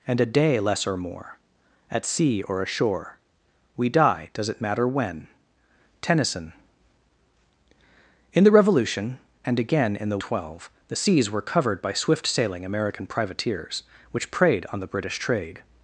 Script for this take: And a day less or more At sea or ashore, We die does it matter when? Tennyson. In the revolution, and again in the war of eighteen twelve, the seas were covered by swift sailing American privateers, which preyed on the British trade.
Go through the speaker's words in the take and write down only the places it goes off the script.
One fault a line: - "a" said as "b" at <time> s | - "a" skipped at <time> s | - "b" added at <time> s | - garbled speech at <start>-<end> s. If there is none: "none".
- "war of eighteen" skipped at 10.2 s